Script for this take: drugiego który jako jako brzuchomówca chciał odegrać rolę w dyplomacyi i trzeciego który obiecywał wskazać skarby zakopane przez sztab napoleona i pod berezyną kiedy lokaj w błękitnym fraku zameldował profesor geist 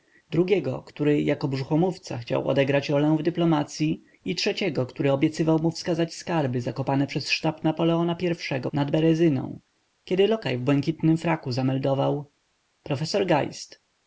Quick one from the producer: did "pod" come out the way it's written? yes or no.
no